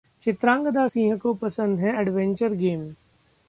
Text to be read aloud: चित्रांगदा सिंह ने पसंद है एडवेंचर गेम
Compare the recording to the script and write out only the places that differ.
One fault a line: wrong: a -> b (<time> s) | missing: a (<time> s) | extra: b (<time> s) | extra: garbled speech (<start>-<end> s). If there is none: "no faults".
wrong: ने -> को (1.2 s)